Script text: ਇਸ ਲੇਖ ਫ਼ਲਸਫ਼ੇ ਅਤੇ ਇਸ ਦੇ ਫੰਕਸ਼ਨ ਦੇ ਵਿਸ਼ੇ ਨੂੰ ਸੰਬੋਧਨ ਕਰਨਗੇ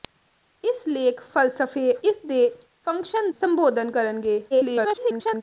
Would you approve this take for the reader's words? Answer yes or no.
no